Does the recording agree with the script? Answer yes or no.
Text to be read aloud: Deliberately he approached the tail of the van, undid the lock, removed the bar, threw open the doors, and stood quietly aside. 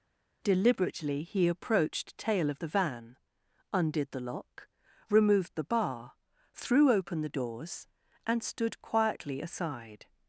no